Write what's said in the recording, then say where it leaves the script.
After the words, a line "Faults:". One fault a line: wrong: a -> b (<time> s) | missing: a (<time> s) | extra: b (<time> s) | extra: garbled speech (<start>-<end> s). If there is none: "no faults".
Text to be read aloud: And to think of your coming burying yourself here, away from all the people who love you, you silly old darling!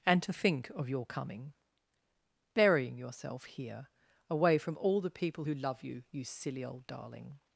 And to think of your coming burying yourself here, away from all the people who love you, you silly old darling!
Faults:
no faults